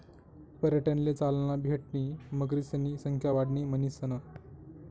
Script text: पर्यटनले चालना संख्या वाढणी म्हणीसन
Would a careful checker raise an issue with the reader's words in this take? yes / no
yes